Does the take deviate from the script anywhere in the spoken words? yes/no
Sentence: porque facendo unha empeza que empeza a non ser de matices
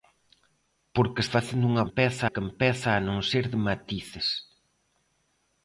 no